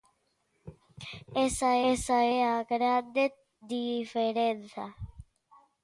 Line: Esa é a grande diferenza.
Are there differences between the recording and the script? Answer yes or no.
yes